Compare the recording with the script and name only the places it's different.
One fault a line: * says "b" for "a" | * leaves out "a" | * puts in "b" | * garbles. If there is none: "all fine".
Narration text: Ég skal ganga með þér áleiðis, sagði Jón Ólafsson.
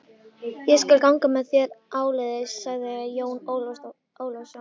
all fine